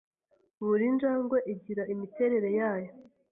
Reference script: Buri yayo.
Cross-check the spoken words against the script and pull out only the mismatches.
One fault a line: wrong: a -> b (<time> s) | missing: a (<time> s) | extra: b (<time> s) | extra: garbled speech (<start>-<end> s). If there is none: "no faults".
extra: njangwe igira imiterere (0.9 s)